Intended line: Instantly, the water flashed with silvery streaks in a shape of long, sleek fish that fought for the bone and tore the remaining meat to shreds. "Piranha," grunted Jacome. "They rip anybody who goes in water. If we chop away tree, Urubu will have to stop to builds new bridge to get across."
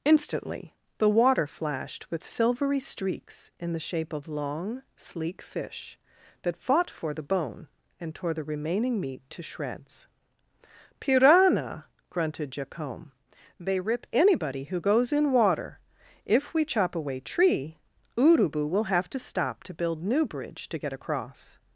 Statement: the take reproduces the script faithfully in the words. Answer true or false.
false